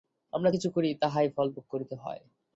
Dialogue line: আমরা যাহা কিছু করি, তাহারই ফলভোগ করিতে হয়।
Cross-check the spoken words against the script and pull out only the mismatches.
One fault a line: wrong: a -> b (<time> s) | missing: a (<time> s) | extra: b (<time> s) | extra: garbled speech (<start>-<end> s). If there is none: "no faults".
missing: যাহা (0.5 s)